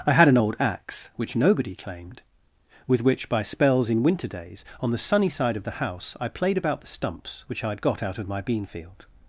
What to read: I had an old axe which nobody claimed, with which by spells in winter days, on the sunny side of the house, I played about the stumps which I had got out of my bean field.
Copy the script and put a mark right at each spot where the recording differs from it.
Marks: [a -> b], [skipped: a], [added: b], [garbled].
I had an old axe which nobody claimed, with which by spells in winter days, on the sunny side of the house, I played about the stumps which I had got out of my bean field.